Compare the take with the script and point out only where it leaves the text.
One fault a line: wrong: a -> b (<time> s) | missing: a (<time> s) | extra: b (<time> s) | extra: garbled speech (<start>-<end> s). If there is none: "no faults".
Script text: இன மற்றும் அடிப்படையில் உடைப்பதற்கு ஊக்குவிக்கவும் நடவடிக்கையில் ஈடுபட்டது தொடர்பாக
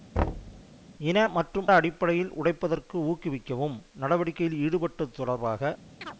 no faults